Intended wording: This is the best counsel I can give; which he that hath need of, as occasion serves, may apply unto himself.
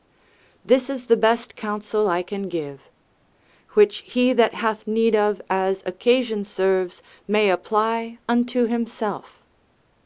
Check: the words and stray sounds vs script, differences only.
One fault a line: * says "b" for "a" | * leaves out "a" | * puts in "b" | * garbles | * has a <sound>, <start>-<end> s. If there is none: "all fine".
all fine